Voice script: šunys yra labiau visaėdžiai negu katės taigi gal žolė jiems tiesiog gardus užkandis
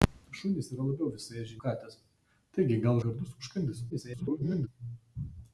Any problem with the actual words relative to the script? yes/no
yes